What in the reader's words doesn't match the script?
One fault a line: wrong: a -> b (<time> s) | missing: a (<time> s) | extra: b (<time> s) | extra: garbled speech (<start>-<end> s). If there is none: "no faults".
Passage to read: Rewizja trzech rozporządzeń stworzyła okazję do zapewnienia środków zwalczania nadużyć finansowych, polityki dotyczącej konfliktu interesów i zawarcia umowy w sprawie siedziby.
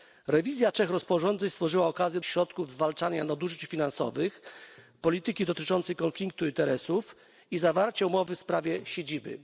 missing: do zapewnienia (2.2 s)